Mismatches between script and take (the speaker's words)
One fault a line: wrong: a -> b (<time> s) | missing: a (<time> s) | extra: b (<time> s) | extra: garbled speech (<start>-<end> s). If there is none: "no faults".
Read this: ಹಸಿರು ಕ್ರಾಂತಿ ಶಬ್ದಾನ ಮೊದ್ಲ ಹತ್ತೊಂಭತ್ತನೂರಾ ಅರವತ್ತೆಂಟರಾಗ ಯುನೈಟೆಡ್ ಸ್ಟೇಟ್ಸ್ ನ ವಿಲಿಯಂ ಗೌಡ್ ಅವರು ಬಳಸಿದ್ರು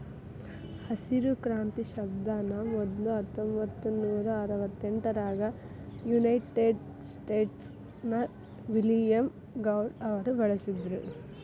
no faults